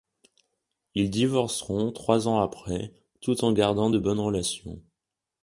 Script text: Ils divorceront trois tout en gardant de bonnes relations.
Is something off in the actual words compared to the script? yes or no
yes